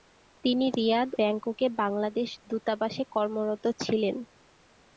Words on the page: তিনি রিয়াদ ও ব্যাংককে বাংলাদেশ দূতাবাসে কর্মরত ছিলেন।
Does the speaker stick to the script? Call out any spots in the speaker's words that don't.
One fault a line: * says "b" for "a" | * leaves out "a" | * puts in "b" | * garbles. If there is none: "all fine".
* leaves out "ও"